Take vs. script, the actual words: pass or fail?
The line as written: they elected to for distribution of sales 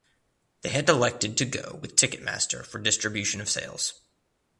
fail